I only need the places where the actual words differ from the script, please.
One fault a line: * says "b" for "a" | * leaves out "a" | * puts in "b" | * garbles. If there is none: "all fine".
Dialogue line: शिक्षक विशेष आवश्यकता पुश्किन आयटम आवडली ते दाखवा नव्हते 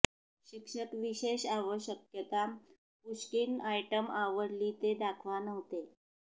all fine